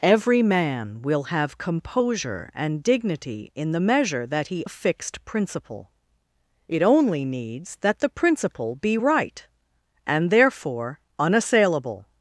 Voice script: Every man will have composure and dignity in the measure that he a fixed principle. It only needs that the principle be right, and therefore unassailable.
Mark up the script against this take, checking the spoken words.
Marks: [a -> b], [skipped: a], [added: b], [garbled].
Every man will have composure and dignity in the measure that he a fixed principle. It only needs that the principle be right, and therefore unassailable.